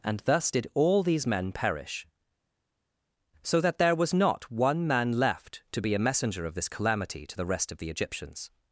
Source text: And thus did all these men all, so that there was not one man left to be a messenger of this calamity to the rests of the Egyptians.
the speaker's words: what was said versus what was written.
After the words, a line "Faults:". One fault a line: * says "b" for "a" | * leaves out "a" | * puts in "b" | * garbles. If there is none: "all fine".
And thus did all these men perish, so that there was not one man left to be a messenger of this calamity to the rest of the Egyptians.
Faults:
* says "perish" for "all"
* says "rest" for "rests"